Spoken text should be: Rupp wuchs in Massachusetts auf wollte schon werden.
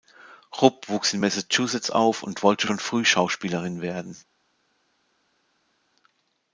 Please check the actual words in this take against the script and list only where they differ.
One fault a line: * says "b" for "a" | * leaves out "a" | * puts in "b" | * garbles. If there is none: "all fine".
* puts in "und"
* puts in "früh Schauspielerin"